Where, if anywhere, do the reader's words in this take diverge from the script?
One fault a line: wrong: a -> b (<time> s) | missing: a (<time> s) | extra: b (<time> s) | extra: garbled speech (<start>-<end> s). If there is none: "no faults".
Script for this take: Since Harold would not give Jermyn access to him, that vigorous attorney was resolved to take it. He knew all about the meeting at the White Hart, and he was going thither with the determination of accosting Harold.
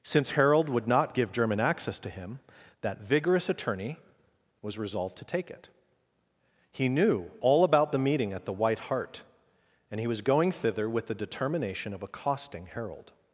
no faults